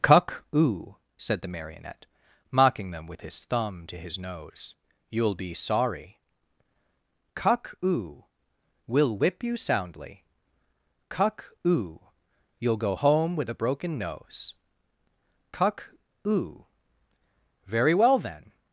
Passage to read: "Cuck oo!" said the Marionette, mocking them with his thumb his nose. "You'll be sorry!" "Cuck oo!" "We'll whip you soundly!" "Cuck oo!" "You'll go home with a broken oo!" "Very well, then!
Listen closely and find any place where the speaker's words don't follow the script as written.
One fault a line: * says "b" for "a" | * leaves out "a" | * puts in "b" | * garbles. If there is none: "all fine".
* puts in "to"
* puts in "nose Cuck"